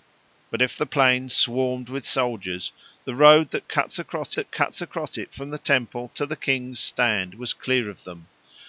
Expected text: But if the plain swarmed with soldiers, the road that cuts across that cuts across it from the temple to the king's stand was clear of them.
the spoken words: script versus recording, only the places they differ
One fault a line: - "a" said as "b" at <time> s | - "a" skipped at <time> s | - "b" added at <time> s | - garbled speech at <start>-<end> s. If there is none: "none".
none